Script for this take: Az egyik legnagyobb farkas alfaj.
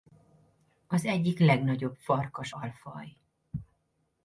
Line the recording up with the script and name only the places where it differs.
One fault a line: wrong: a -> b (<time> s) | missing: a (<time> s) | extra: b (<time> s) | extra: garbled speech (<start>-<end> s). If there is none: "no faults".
no faults